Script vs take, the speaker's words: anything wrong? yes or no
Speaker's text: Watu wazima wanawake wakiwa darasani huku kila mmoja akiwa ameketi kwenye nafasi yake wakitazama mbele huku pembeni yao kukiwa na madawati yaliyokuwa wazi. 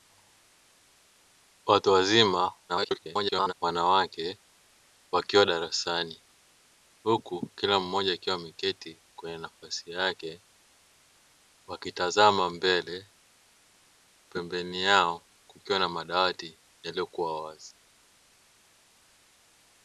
yes